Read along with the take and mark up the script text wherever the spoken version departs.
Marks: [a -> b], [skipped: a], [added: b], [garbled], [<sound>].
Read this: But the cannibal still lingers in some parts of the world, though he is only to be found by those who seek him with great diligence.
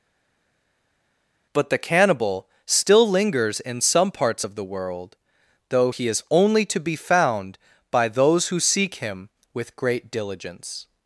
But the cannibal still lingers in some parts of the world, though he is only to be found by those who seek him with great diligence.